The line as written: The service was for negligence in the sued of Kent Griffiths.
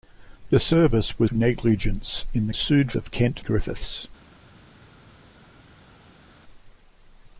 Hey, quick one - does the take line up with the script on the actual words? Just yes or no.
yes